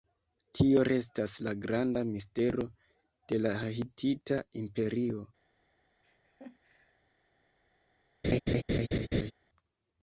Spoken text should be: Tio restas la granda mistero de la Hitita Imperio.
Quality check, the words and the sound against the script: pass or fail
fail